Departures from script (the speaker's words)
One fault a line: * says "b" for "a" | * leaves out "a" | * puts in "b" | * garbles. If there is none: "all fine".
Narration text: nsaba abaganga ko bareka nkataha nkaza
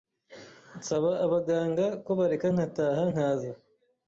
all fine